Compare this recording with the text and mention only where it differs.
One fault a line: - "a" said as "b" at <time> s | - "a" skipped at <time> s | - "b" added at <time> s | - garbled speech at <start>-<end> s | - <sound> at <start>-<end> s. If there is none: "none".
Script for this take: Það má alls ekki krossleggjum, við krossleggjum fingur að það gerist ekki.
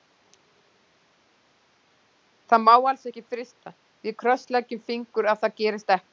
- "krossleggjum" said as "frysta" at 3.3 s